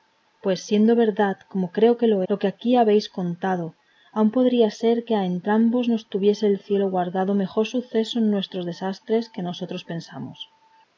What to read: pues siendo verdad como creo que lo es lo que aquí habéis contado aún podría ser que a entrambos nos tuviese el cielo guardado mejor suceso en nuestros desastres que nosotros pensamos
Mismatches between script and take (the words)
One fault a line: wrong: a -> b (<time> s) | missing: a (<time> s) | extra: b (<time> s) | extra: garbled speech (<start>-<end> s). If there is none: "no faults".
missing: es (2.2 s)